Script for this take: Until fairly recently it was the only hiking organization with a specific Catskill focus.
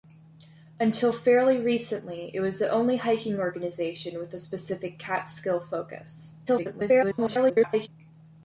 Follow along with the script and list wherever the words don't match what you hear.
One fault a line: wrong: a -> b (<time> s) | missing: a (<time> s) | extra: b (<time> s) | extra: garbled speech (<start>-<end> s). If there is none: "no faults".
extra: garbled speech (6.5-7.9 s)